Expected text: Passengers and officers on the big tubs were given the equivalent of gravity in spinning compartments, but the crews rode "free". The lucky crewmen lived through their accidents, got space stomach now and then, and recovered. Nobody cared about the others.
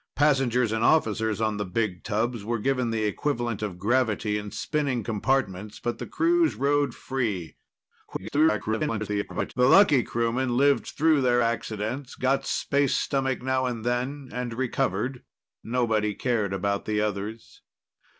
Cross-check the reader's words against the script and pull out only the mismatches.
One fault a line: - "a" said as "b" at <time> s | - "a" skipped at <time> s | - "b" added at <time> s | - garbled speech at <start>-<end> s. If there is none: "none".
- garbled speech at 8.1-9.5 s